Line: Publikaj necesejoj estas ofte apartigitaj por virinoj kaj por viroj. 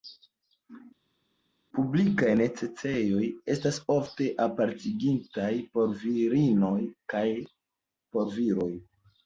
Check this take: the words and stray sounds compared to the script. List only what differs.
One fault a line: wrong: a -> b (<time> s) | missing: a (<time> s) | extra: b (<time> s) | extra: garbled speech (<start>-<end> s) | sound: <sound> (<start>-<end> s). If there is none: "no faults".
no faults